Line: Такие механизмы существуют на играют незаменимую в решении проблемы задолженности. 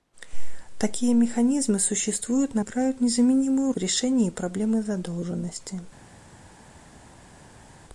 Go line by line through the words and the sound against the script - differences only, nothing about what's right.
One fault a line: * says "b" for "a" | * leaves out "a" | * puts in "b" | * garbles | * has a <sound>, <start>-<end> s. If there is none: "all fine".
all fine